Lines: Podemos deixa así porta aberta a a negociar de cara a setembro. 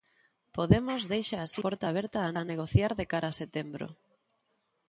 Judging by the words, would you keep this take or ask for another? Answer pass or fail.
pass